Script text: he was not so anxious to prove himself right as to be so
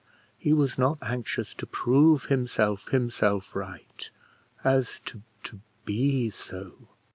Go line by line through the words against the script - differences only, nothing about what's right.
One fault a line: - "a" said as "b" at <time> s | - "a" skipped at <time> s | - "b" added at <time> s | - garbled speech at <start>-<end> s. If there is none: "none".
- "so" skipped at 1.0 s
- "himself" added at 2.9 s
- "to" added at 5.4 s